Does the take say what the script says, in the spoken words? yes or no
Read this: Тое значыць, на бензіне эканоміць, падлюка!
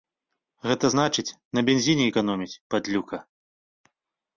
no